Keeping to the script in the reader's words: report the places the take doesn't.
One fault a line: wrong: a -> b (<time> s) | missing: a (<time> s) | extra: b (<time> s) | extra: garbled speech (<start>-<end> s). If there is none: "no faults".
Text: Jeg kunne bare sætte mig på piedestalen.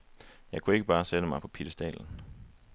extra: ikke (0.8 s)